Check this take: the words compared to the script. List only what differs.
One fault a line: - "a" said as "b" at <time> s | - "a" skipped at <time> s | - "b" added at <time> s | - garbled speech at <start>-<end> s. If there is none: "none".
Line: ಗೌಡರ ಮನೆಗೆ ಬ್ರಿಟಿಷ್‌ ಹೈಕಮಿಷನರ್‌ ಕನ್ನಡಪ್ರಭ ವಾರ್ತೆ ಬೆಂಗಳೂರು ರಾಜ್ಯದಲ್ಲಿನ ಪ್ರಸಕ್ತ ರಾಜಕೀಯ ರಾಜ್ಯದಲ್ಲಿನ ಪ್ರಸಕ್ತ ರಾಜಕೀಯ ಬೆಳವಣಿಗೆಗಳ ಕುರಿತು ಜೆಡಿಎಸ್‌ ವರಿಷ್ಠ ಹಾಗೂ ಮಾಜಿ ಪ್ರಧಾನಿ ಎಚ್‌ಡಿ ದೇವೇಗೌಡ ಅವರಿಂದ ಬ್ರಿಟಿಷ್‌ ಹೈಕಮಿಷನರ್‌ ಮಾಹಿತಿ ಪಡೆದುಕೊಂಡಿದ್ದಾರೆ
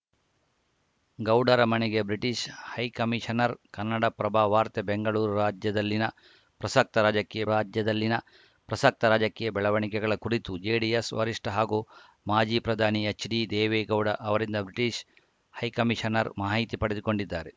none